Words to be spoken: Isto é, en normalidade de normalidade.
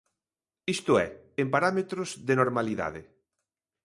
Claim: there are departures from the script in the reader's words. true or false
true